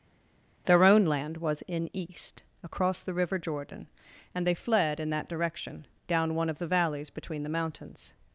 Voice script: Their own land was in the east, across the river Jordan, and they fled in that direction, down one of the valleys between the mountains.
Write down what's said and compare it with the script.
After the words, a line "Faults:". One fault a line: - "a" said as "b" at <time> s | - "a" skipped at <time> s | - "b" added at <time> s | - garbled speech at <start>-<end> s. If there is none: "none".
Their own land was in east, across the river Jordan, and they fled in that direction, down one of the valleys between the mountains.
Faults:
- "the" skipped at 1.9 s